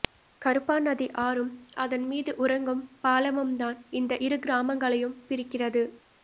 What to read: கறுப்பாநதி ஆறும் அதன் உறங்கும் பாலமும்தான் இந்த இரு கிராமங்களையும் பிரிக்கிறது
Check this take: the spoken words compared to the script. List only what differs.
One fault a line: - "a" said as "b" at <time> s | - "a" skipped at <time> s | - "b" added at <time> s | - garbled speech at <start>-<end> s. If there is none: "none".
- "மீது" added at 2.1 s